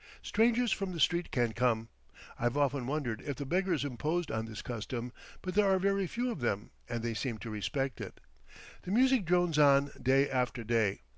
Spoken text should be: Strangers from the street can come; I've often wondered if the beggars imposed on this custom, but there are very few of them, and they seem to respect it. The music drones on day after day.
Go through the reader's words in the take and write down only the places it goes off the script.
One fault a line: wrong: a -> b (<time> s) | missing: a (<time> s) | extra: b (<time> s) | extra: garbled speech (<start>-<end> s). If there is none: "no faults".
no faults